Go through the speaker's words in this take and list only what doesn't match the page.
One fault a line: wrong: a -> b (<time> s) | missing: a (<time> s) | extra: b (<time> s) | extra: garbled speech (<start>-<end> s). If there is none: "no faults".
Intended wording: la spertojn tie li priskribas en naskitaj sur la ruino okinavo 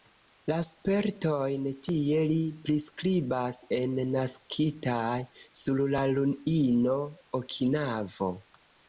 no faults